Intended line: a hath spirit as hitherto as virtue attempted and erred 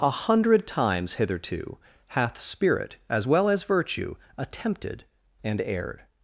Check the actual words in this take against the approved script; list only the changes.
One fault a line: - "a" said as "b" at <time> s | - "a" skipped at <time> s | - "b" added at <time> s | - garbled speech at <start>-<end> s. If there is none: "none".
- "hundred times hitherto" added at 0.1 s
- "hitherto" said as "well" at 3.3 s